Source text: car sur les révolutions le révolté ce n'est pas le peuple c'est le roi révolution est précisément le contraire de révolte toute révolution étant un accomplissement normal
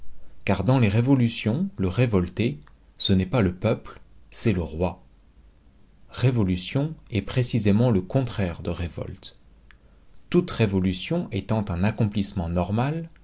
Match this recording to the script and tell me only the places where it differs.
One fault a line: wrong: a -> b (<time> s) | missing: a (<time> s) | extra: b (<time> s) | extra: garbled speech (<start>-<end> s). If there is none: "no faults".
wrong: sur -> dans (0.6 s)